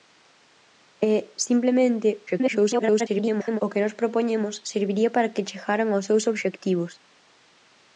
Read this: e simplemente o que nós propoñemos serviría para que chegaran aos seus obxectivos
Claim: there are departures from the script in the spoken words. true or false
true